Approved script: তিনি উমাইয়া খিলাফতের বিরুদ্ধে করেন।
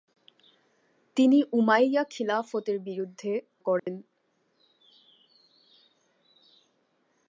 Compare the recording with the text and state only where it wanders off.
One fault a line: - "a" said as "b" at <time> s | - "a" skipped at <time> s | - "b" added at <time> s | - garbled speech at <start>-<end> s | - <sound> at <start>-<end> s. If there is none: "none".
- dropout at 3.8-3.9 s